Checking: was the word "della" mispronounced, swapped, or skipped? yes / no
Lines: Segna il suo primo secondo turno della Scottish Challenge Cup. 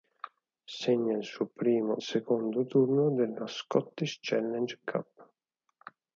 no